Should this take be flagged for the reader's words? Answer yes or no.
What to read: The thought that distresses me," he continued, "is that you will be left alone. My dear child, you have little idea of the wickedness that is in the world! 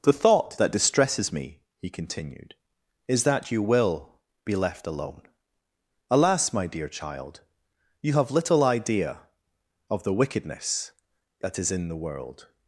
yes